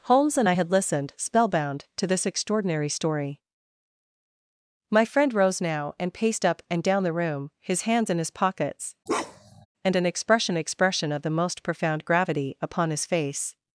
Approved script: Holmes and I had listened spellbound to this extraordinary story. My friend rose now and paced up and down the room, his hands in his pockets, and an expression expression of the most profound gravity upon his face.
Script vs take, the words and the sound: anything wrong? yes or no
yes